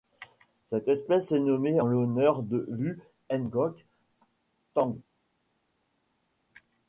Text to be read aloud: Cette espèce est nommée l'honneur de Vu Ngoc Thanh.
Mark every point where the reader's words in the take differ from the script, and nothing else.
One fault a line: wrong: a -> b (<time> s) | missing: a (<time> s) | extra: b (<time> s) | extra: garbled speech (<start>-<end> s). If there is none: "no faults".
no faults